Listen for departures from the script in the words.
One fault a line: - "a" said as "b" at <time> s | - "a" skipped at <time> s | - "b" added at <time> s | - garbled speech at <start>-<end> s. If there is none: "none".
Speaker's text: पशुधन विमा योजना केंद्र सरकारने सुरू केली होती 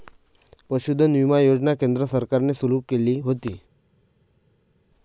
none